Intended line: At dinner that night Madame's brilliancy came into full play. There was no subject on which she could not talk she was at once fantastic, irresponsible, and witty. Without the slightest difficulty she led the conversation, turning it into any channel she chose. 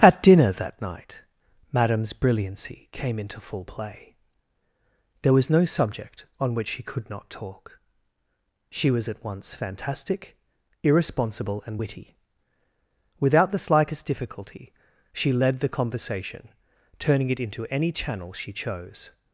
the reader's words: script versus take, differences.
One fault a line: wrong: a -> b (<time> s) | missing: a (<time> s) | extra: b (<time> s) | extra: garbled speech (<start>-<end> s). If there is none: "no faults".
no faults